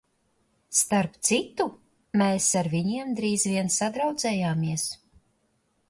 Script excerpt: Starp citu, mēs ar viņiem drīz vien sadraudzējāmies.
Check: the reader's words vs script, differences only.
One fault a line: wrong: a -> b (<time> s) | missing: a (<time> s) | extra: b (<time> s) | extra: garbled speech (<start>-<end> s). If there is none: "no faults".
no faults